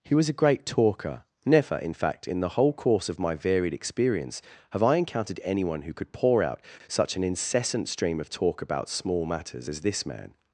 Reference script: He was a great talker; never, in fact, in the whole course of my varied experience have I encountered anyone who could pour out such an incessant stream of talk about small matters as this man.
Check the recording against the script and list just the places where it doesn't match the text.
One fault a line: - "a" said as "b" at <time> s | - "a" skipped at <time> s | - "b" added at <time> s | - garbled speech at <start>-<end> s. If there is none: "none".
none